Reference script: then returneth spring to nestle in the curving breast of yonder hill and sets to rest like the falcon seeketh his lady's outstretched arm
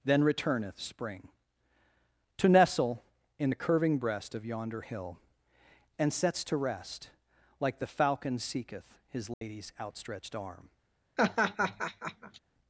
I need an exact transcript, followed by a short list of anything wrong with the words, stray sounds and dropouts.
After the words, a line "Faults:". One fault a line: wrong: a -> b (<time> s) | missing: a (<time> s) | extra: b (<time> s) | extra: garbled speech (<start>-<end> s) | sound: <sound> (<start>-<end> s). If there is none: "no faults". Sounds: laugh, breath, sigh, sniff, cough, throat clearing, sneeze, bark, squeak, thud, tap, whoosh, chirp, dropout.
then returneth spring to nestle in the curving breast of yonder hill and sets to rest like the falcon seeketh his lady's outstretched arm
Faults:
sound: dropout (9.3-9.4 s)
sound: laugh (11.2-12.4 s)